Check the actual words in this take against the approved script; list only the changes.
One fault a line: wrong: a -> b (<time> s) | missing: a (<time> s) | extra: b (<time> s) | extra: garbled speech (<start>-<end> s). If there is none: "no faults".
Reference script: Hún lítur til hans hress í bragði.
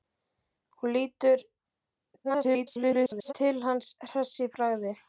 extra: garbled speech (2.2-3.3 s)